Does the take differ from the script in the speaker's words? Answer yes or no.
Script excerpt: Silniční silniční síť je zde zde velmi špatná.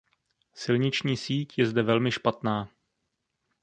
yes